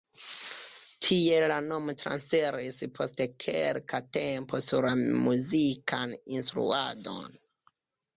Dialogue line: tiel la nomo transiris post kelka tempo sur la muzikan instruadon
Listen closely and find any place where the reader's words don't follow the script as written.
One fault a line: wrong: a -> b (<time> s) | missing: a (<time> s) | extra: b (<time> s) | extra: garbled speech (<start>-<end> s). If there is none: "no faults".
no faults